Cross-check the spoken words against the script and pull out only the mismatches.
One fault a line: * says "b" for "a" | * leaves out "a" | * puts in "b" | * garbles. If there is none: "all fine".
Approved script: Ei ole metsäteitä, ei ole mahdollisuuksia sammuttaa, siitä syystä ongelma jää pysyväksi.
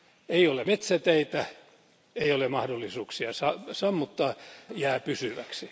* leaves out "siitä syystä ongelma"